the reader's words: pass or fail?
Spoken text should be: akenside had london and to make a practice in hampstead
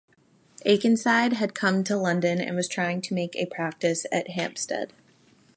fail